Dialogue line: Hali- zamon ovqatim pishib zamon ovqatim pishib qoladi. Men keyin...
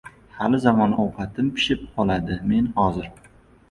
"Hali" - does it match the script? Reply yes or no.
yes